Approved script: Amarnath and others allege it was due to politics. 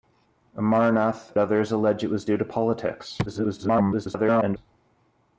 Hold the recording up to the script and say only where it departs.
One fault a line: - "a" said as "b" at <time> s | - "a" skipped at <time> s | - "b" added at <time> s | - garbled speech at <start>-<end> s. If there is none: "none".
- "and" skipped at 1.3 s
- garbled speech at 3.3-4.6 s